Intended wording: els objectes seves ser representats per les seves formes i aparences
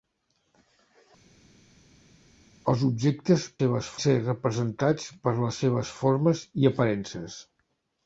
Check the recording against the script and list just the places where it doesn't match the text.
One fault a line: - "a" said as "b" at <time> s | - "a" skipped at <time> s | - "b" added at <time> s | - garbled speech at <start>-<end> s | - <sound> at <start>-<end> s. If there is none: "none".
none